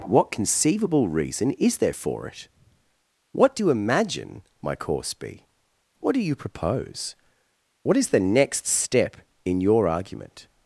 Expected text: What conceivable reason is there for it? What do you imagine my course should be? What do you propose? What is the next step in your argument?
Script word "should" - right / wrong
wrong